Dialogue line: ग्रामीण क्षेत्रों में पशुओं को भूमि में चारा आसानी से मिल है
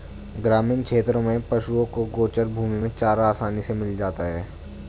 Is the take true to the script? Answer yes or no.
no